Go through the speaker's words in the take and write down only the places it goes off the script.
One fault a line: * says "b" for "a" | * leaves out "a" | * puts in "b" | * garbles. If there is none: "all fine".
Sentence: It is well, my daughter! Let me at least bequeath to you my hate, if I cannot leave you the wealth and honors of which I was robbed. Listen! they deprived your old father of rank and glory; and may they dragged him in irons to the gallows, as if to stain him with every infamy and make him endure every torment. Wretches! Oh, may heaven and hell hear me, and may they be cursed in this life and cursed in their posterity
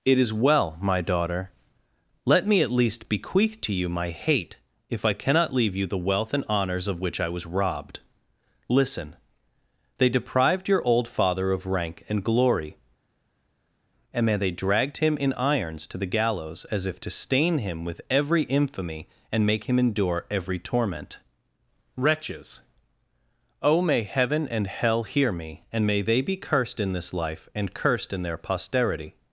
all fine